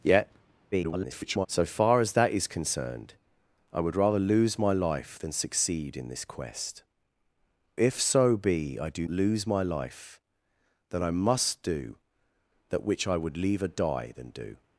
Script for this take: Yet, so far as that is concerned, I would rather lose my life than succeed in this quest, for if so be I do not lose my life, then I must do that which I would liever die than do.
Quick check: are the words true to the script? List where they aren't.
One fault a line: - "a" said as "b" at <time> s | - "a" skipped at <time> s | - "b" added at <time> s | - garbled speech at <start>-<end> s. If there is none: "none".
- garbled speech at 0.7-1.5 s
- "for" skipped at 6.8 s
- "not" skipped at 9.0 s